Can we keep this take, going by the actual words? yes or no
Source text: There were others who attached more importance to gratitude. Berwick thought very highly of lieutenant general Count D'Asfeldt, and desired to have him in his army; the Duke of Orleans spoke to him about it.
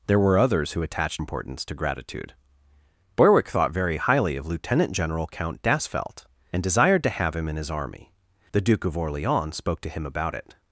no